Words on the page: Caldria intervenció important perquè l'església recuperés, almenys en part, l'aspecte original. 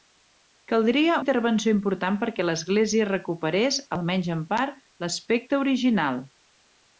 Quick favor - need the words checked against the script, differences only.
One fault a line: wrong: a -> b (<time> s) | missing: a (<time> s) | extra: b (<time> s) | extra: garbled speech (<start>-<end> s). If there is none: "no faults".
no faults